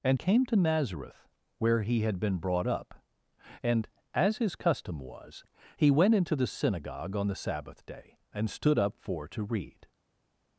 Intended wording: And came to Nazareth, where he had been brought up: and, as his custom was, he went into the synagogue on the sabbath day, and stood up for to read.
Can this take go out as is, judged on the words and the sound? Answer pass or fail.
pass